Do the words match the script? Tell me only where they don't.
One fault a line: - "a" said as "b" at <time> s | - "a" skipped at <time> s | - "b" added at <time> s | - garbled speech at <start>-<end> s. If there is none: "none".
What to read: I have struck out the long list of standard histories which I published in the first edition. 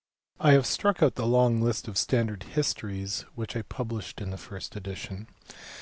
none